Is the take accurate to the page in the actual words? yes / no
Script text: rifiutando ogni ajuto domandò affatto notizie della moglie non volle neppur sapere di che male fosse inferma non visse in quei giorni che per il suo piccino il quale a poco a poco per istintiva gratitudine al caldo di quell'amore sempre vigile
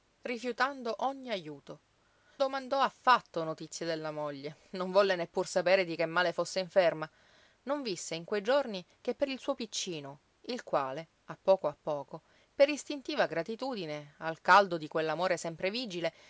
yes